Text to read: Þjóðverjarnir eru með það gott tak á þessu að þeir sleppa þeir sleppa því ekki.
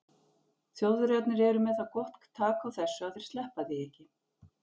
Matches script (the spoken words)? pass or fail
fail